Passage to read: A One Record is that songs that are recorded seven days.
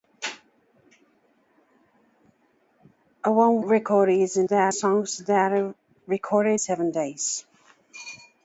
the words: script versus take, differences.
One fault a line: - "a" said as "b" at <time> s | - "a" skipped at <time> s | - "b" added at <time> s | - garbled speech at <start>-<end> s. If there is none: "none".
none